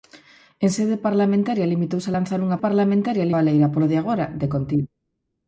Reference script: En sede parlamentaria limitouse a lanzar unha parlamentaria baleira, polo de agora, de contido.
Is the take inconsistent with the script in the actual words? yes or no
no